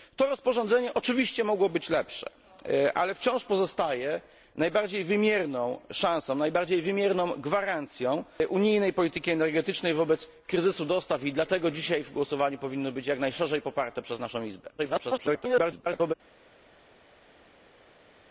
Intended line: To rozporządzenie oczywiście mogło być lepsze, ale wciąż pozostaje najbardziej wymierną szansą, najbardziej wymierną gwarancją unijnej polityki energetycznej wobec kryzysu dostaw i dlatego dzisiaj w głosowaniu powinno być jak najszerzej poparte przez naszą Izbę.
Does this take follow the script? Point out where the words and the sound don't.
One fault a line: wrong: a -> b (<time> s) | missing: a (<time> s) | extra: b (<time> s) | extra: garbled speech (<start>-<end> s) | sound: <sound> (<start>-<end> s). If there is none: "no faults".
extra: garbled speech (14.8-16.1 s)